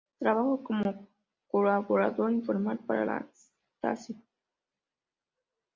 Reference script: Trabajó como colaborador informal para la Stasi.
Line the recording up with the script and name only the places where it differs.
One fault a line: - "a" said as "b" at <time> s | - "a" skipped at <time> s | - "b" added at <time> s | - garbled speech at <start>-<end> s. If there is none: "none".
none